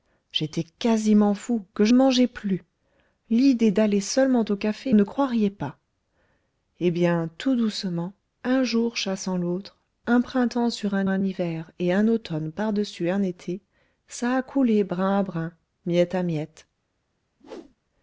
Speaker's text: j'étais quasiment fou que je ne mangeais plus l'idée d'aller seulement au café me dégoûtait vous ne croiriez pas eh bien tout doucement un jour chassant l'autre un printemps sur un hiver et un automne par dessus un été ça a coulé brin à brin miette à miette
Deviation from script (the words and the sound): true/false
true